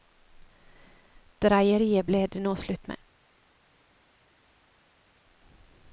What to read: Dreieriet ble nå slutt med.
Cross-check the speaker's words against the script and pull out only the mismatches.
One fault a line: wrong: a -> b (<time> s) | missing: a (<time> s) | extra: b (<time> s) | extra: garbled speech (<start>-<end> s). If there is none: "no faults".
extra: det (2.3 s)